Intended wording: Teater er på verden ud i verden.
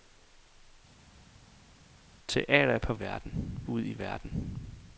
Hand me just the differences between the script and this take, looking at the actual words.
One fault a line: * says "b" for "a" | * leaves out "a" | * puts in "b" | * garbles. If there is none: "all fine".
all fine